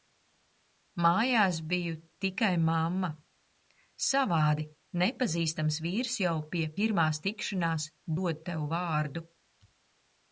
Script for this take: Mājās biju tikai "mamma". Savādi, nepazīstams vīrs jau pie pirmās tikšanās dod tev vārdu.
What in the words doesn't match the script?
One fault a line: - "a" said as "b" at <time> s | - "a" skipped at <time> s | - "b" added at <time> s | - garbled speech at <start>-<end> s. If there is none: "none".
none